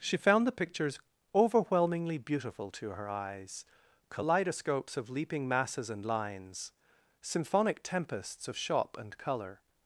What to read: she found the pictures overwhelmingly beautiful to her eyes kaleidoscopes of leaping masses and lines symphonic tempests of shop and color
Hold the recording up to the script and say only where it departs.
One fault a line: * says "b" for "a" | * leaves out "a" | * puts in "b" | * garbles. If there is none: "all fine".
all fine